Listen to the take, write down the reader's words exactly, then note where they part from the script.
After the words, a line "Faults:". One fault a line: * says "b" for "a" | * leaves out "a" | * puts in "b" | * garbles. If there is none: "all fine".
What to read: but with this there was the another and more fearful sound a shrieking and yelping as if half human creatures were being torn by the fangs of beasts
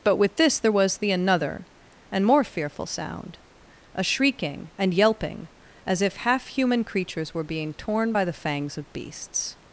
but with this there was the another and more fearful sound a shrieking and yelping as if half human creatures were being torn by the fangs of beasts
Faults:
all fine